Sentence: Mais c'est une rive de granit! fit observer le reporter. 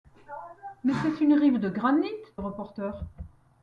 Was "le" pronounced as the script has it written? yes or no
no